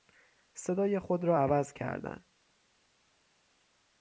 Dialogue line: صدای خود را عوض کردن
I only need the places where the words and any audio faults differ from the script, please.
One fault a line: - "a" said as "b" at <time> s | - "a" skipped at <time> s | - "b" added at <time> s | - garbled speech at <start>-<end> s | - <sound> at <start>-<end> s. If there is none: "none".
none